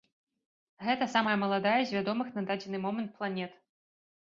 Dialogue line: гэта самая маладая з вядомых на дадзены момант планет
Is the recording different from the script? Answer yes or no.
no